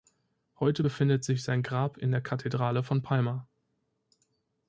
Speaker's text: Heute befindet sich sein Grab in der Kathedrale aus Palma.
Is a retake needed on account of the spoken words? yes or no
yes